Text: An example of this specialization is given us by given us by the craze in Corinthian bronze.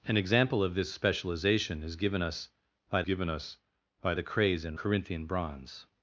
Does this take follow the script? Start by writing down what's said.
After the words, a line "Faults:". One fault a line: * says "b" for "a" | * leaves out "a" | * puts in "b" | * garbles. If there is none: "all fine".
An example of this specialization is given us by given us by the craze in Corinthian bronze.
Faults:
all fine